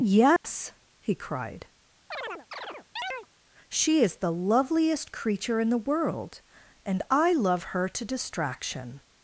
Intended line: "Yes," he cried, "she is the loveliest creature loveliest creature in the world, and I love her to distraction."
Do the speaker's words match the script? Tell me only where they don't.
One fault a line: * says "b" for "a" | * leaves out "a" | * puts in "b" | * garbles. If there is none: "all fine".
* leaves out "loveliest creature"